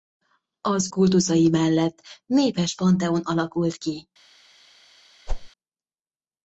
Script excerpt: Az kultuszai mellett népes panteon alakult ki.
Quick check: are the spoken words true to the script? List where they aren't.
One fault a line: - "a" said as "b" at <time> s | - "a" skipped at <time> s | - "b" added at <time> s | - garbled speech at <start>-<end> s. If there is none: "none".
none